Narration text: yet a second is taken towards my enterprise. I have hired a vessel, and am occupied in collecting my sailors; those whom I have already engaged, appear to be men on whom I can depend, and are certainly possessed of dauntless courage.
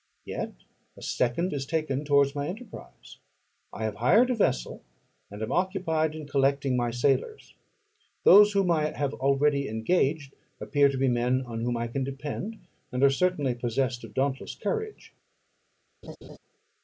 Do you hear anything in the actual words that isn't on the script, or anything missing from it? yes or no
no